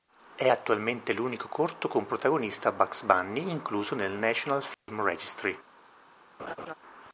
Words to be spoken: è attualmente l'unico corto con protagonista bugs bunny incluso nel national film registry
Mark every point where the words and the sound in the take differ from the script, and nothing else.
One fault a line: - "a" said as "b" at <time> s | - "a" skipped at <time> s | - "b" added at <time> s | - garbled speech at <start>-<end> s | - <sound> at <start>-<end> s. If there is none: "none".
- dropout at 4.7-4.9 s
- laugh at 6.4-6.7 s